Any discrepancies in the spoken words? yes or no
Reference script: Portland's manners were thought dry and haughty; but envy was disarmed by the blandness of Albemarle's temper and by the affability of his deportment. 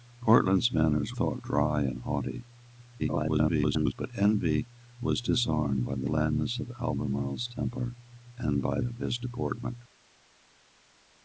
yes